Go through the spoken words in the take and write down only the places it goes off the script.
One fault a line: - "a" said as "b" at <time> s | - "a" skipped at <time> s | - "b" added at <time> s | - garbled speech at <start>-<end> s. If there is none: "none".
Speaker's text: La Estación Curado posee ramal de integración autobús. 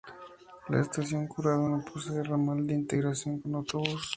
- "no" added at 1.6 s
- "con" added at 3.4 s